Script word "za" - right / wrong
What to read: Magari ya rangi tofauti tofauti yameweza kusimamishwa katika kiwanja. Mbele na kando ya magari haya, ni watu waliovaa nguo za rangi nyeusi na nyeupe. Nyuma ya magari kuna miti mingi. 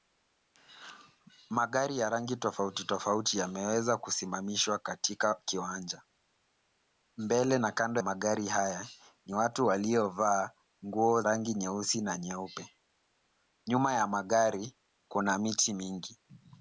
wrong